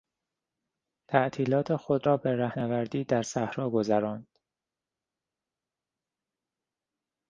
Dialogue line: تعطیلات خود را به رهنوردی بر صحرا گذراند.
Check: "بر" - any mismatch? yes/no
yes